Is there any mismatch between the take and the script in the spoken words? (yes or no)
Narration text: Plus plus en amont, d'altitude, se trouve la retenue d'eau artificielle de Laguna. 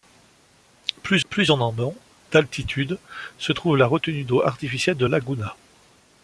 no